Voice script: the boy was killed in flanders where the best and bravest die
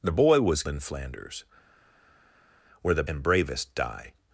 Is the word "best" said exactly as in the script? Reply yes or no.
no